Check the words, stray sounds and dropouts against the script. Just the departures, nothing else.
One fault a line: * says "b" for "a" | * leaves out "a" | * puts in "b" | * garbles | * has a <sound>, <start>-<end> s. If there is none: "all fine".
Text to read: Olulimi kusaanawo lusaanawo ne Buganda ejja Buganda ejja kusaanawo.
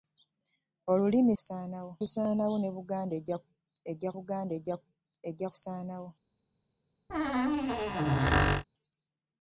* has a squeak, 7.1-8.6 s